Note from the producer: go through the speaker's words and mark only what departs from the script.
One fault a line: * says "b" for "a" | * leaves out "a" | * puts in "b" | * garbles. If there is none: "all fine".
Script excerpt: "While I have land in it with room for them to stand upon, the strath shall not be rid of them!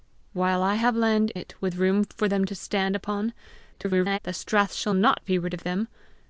* leaves out "in"
* garbles